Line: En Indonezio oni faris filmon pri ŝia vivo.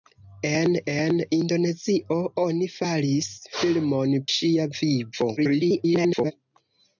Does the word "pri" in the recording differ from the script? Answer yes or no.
yes